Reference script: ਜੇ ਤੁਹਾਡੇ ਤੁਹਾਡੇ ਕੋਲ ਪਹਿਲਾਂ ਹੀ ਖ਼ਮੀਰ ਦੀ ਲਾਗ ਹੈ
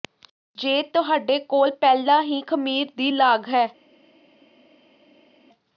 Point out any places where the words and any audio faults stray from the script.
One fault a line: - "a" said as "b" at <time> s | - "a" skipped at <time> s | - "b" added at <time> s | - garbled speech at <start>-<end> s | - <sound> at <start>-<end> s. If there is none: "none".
- "ਤੁਹਾਡੇ" skipped at 1.4 s